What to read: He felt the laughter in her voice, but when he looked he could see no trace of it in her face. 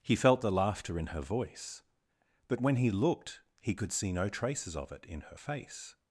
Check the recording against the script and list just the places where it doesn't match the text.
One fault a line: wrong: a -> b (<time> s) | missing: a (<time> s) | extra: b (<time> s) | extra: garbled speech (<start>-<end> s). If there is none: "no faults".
wrong: trace -> traces (4.3 s)